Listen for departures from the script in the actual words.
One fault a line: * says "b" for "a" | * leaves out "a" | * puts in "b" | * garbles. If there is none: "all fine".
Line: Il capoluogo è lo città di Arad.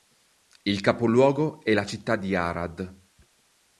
* says "la" for "lo"